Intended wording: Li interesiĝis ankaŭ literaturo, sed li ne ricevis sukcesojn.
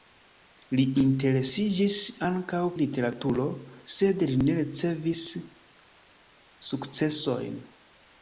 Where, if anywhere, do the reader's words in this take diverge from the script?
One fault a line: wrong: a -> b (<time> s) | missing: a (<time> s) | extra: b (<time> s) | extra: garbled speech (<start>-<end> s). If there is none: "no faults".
no faults